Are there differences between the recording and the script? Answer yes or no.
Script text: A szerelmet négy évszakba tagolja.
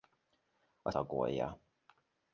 yes